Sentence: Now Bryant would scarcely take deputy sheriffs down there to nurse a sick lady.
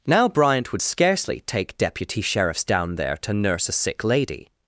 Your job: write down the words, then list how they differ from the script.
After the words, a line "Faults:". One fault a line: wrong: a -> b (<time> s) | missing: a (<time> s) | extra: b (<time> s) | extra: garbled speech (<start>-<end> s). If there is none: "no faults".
Now Bryant would scarcely take deputy sheriffs down there to nurse a sick lady.
Faults:
no faults